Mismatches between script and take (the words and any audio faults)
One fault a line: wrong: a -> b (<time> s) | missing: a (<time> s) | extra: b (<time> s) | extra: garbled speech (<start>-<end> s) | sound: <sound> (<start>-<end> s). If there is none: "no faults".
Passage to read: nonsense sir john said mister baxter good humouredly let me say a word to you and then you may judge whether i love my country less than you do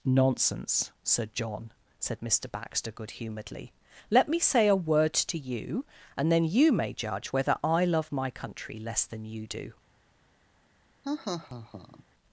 sound: laugh (11.0-12.0 s)